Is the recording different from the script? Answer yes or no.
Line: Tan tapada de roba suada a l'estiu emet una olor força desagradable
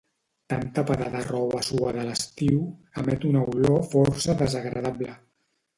no